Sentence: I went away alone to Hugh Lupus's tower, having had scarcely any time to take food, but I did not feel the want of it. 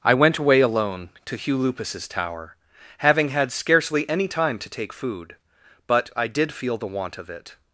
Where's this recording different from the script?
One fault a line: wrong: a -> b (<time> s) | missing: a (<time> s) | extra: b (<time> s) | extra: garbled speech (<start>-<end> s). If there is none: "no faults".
missing: not (6.5 s)